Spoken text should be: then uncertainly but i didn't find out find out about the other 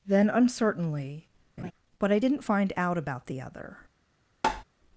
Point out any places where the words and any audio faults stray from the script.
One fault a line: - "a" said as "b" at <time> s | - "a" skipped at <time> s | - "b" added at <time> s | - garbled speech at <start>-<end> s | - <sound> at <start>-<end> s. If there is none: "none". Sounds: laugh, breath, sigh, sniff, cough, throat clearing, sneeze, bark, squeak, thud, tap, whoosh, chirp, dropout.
- laugh at 1.6-1.7 s
- "find out" skipped at 3.0 s
- tap at 4.4-4.6 s